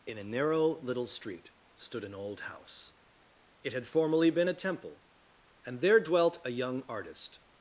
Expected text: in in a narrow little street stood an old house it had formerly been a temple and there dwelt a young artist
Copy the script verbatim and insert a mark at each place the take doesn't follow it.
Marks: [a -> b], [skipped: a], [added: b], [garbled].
in [skipped: in] a narrow little street stood an old house it had formerly been a temple and there dwelt a young artist